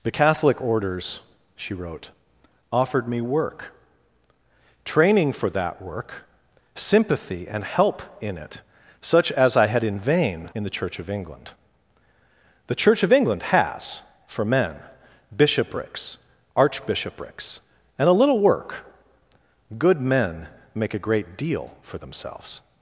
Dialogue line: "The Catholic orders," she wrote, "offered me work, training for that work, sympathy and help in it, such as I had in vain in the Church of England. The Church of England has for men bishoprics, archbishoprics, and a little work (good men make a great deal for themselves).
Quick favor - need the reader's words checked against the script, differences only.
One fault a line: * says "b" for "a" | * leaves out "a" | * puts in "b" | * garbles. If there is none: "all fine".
all fine